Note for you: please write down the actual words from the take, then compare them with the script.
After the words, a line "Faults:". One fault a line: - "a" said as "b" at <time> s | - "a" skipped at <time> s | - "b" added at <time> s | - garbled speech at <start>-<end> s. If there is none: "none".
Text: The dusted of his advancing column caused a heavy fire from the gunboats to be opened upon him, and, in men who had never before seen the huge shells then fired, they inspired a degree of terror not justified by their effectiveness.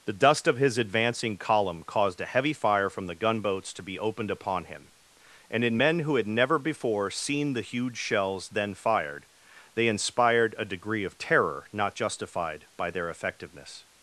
The dust of his advancing column caused a heavy fire from the gunboats to be opened upon him, and, in men who had never before seen the huge shells then fired, they inspired a degree of terror not justified by their effectiveness.
Faults:
- "dusted" said as "dust" at 0.1 s